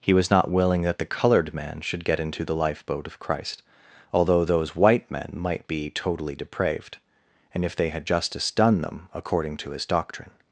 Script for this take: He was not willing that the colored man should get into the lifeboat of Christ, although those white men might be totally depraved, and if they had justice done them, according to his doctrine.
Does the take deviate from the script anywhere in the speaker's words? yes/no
no